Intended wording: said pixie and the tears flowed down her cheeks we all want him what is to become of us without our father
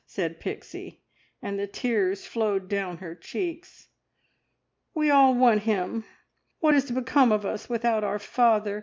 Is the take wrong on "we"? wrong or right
right